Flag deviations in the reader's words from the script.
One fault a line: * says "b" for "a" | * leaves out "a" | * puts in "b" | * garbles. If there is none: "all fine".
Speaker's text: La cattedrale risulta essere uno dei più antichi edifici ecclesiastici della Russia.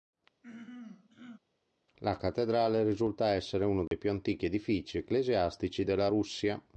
all fine